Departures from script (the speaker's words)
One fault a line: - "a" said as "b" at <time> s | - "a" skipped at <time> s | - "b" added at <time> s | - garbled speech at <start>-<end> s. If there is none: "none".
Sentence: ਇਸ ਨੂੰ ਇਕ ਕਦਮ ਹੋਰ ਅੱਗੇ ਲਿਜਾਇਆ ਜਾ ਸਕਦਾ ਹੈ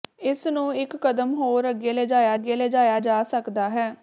- "ਅੱਗੇ ਲਿਜਾਇਆ" added at 2.3 s